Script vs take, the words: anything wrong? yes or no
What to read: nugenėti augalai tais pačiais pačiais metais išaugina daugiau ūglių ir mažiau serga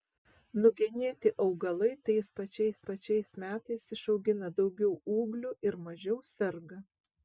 no